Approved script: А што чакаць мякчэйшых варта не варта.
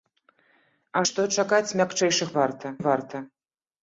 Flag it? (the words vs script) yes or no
no